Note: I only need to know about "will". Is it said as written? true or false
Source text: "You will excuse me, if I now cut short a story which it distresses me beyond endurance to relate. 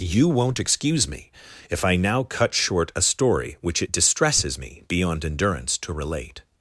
false